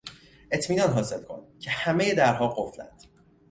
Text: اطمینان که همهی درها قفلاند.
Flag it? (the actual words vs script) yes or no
yes